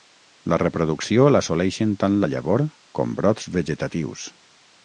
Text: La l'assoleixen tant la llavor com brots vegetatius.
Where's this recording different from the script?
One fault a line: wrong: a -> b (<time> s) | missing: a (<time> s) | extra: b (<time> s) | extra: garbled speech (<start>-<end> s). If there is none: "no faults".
extra: reproducció (0.6 s)